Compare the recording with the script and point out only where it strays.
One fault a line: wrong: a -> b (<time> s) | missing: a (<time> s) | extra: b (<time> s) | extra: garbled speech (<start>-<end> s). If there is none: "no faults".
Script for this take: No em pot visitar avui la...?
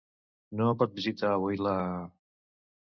no faults